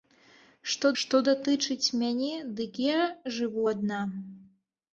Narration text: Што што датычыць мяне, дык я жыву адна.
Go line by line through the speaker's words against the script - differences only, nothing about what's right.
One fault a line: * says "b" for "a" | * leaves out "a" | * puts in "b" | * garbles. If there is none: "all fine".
all fine